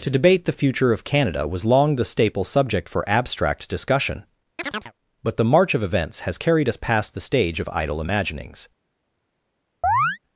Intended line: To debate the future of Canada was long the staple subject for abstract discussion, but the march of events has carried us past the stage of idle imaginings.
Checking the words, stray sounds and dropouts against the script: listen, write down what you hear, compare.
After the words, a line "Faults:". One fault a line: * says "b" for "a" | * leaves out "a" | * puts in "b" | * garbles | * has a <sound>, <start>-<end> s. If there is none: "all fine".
To debate the future of Canada was long the staple subject for abstract discussion, but the march of events has carried us past the stage of idle imaginings.
Faults:
* has a chirp, 4.6-4.9 s
* has a chirp, 9.8-10.2 s